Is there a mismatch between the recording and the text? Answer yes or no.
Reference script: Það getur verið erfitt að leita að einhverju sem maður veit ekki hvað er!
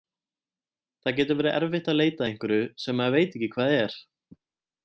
no